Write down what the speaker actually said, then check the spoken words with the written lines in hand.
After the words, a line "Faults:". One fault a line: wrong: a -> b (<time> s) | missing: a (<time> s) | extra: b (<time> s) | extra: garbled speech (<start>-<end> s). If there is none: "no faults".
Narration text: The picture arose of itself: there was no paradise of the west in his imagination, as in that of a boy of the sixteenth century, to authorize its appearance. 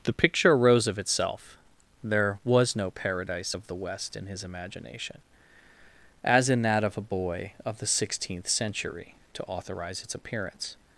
The picture arose of itself: there was no paradise of the west in his imagination, as in that of a boy of the sixteenth century, to authorize its appearance.
Faults:
no faults